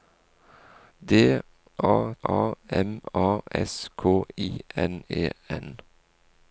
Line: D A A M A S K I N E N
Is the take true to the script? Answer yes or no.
yes